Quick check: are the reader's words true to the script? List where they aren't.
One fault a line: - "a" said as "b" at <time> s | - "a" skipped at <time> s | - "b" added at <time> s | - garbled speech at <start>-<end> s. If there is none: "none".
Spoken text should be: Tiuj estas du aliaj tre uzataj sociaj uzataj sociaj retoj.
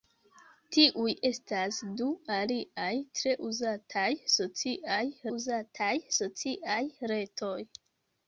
none